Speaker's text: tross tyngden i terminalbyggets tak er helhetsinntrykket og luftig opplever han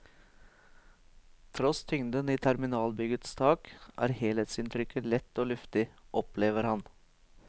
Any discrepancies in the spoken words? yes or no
yes